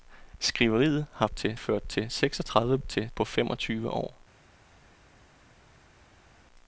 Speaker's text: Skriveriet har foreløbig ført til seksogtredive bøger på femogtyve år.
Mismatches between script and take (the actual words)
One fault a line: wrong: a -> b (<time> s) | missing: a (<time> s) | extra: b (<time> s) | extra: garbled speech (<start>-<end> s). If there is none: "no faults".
wrong: foreløbig -> til (1.3 s)
wrong: bøger -> til (2.8 s)